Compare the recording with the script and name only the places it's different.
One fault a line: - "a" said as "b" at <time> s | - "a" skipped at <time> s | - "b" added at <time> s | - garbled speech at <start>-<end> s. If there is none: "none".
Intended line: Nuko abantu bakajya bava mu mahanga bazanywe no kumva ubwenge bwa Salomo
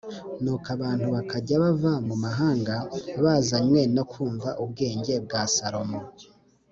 none